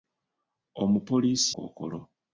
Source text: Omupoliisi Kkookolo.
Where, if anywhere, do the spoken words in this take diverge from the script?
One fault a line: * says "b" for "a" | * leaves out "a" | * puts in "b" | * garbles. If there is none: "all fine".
all fine